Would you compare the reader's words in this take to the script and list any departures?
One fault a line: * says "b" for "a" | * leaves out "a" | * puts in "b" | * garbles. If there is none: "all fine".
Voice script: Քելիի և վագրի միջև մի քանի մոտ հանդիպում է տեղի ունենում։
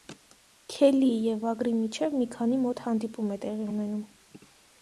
all fine